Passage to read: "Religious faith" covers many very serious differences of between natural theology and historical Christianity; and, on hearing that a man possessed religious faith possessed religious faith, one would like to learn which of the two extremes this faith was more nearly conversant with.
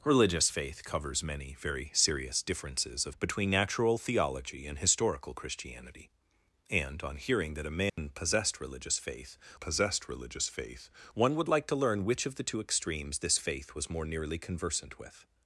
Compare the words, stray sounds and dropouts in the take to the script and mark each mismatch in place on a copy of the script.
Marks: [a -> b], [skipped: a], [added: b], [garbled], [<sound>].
"Religious faith" covers many very serious differences of between natural theology and historical Christianity; and, on hearing that a man [dropout] possessed religious faith possessed religious faith, one would like to learn which of the two extremes this faith was more nearly conversant with.